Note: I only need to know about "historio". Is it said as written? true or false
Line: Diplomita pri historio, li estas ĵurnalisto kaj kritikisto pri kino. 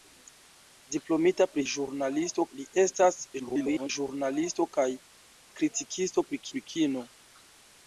false